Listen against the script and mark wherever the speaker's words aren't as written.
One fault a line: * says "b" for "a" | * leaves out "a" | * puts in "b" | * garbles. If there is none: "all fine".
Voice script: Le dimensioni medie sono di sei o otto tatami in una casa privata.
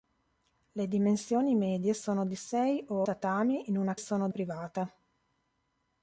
* leaves out "otto"
* says "sono" for "casa"